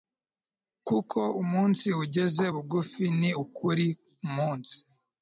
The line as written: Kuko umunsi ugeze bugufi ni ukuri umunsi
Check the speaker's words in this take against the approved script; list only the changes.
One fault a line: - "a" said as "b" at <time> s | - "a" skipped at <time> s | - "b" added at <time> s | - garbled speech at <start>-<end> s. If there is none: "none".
none